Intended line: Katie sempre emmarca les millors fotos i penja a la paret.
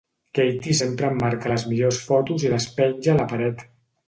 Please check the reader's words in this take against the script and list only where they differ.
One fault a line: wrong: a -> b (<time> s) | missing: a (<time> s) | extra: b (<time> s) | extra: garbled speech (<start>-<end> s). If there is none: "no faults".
extra: les (2.6 s)